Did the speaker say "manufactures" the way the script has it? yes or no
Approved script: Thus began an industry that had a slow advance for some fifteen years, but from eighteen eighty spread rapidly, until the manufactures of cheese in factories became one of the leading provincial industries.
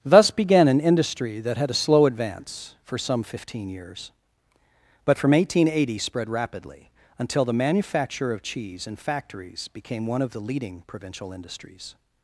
no